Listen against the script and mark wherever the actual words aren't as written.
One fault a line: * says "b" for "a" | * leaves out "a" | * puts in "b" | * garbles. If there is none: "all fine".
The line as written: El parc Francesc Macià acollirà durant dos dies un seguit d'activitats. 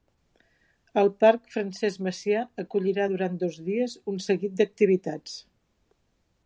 all fine